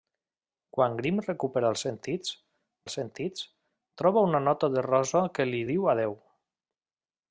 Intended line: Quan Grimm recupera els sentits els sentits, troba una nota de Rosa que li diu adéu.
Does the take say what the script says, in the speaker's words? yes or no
yes